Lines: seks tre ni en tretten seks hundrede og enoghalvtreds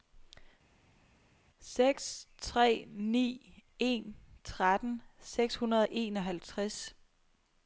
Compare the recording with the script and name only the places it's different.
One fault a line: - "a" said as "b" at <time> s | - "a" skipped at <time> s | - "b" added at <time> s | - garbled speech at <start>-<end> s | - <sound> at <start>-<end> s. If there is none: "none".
none